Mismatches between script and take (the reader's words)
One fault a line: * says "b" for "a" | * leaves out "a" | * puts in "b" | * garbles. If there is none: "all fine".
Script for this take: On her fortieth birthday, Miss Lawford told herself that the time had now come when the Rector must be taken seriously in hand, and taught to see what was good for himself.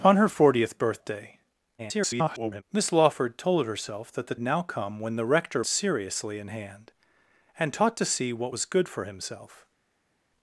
* garbles
* leaves out "time had"
* leaves out "must be taken"